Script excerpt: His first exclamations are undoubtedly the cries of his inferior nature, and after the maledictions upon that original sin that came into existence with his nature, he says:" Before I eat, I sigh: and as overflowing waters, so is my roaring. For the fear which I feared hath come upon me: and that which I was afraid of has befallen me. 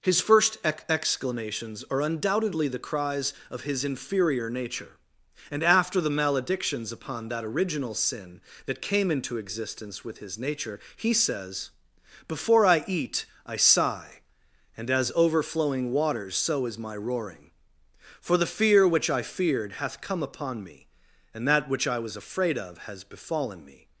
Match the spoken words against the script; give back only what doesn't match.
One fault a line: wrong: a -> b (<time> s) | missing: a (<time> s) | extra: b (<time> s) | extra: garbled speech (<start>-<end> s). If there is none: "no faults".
extra: ex (0.6 s)